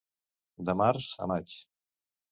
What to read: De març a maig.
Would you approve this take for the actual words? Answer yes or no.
yes